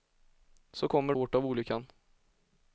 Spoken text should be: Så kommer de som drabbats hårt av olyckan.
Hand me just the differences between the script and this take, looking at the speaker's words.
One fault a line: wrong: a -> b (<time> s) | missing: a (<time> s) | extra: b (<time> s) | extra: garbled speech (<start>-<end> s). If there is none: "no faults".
missing: de som drabbats (1.1 s)